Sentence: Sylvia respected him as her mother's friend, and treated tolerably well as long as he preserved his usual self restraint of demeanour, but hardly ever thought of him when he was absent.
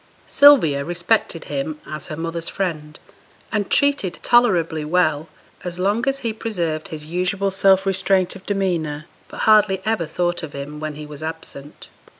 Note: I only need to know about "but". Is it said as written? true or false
true